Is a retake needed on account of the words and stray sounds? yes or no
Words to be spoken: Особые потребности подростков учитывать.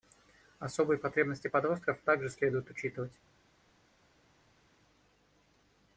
yes